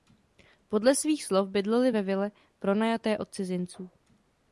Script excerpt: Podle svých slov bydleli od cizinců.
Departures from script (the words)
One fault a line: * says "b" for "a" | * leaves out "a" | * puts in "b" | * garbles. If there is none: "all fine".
* puts in "ve vile pronajaté"